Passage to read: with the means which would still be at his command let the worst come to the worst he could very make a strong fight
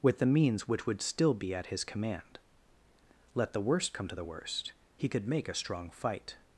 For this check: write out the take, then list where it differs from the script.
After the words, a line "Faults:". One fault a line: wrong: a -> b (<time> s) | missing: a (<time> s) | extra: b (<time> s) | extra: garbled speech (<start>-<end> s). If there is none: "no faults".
with the means which would still be at his command let the worst come to the worst he could make a strong fight
Faults:
missing: very (5.3 s)